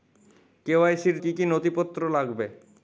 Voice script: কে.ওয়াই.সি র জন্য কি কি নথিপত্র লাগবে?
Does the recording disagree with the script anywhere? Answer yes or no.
yes